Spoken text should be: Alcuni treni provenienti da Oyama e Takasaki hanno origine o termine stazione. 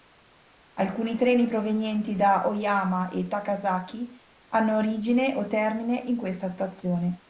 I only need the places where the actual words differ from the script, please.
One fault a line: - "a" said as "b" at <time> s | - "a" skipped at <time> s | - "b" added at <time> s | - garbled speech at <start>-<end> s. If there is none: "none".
- "in questa" added at 6.0 s